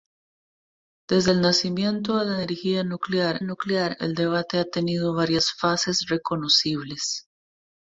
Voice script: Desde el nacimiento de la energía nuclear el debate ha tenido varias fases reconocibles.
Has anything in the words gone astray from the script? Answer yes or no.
yes